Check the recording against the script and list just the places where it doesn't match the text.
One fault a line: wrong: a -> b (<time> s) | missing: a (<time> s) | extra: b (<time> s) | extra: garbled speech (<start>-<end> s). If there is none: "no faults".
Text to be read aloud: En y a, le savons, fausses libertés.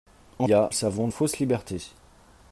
no faults